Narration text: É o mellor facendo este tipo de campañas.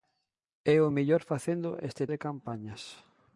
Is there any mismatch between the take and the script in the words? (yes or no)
yes